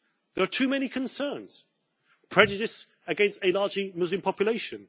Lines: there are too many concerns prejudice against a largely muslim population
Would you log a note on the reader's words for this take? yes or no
no